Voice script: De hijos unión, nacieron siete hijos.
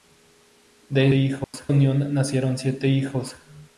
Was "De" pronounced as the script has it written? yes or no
yes